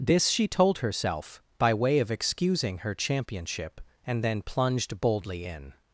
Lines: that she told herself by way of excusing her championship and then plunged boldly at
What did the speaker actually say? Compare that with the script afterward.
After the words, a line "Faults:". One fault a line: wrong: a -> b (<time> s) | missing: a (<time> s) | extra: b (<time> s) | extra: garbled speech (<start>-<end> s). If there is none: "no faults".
this she told herself by way of excusing her championship and then plunged boldly in
Faults:
wrong: that -> this (0.0 s)
wrong: at -> in (5.4 s)